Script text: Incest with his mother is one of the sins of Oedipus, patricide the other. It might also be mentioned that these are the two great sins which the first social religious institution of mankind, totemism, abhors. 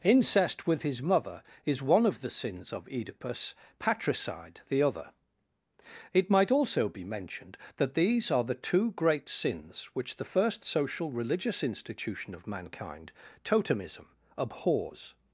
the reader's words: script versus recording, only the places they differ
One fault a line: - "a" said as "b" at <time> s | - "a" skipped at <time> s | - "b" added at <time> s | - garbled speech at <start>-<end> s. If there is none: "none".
none